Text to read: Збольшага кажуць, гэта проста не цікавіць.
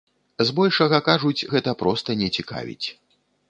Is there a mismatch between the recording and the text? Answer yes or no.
no